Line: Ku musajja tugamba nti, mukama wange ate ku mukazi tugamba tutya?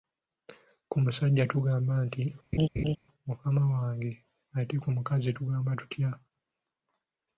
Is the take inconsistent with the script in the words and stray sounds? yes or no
yes